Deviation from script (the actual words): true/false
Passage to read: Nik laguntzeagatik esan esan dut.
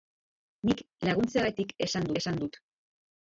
false